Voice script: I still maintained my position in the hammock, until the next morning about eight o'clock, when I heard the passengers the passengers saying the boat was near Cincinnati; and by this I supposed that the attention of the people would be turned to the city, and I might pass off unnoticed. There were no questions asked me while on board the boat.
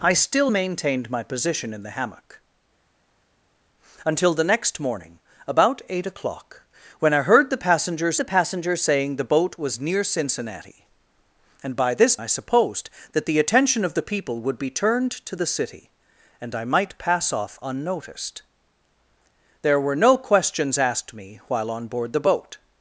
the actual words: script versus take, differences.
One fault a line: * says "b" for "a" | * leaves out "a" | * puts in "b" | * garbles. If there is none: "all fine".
all fine